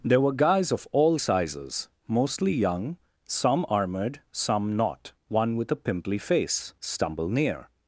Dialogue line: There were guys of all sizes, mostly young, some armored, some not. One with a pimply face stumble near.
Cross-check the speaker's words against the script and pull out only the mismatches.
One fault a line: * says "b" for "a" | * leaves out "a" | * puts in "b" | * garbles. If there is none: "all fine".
all fine